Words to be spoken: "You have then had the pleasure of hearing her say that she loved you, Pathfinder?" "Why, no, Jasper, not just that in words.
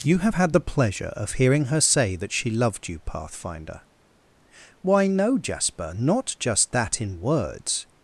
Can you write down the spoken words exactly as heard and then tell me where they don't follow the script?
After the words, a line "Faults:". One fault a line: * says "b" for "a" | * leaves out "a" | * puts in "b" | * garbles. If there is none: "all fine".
"You have had the pleasure of hearing her say that she loved you, Pathfinder?" "Why, no, Jasper, not just that in words.
Faults:
* leaves out "then"